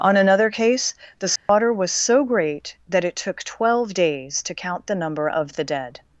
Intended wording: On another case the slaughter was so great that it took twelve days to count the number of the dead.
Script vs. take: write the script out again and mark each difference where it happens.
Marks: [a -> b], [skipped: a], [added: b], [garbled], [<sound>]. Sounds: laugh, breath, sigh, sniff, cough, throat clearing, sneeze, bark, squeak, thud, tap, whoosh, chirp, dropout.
On another case the slaughter [dropout] was so great that it took twelve days to count the number of the dead.